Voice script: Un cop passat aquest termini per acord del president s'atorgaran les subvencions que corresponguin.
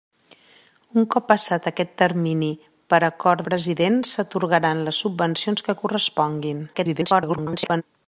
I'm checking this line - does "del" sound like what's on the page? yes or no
no